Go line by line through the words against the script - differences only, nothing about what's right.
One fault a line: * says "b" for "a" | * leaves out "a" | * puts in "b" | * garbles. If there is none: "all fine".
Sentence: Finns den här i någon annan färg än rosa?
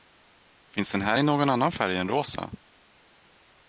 all fine